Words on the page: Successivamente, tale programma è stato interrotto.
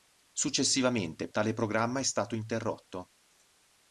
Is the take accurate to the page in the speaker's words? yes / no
yes